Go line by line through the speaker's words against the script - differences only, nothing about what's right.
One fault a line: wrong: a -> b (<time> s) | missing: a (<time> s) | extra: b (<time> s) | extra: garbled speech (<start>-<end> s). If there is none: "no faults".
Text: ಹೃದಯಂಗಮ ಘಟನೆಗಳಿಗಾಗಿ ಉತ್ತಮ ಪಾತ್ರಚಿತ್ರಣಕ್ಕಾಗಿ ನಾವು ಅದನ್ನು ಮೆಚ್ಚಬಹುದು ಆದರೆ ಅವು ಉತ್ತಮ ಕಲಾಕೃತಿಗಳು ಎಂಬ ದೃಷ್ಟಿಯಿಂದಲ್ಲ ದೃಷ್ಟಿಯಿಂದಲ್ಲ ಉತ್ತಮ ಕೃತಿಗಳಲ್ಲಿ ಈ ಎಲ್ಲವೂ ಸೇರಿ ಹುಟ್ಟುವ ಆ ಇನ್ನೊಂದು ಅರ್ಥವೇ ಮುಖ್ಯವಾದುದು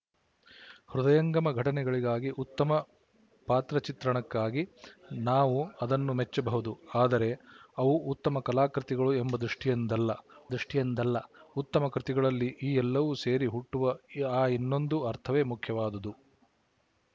no faults